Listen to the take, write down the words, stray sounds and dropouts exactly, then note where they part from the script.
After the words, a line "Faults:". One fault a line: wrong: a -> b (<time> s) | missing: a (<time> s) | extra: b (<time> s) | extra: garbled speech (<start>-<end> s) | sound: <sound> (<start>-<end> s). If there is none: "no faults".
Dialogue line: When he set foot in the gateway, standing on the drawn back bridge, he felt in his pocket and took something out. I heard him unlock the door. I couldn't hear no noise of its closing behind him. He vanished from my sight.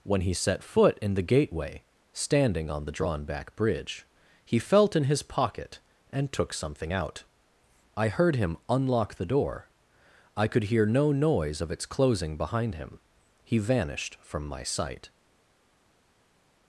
When he set foot in the gateway, standing on the drawn back bridge, he felt in his pocket and took something out. I heard him unlock the door. I could hear no noise of its closing behind him. He vanished from my sight.
Faults:
wrong: couldn't -> could (10.5 s)